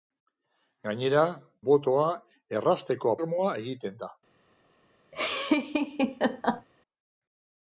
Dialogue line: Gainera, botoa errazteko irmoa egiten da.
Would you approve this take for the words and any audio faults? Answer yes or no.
no